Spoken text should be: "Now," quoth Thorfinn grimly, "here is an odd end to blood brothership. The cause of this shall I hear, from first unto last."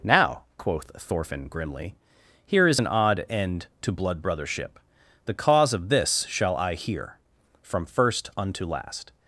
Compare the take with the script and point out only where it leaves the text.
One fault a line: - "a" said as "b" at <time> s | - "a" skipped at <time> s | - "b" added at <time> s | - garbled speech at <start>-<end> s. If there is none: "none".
none